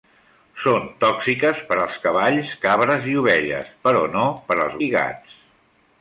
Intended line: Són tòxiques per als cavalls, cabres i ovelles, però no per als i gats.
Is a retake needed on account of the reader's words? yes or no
no